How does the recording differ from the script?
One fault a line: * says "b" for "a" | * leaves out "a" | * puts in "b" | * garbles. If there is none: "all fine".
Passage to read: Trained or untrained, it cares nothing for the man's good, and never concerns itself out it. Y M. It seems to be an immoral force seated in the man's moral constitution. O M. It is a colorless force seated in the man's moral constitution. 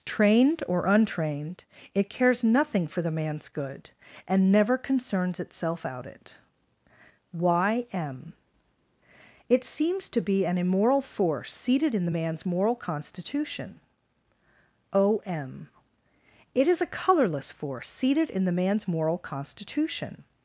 all fine